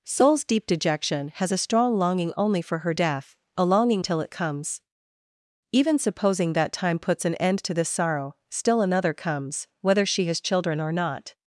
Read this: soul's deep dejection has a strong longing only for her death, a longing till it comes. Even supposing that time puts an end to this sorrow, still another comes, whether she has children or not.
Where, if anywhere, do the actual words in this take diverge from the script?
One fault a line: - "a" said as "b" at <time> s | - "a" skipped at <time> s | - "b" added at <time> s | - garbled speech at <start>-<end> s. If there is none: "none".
none